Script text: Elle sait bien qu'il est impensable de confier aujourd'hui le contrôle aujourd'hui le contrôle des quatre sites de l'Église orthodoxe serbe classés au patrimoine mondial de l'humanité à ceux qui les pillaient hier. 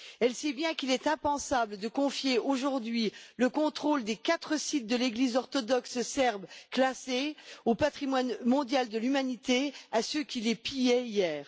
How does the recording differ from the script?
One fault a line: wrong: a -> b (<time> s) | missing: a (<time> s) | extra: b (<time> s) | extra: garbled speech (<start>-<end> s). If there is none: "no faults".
missing: aujourd'hui le contrôle (4.0 s)